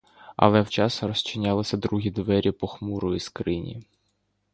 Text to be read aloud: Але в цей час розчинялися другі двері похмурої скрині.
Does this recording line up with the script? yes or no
no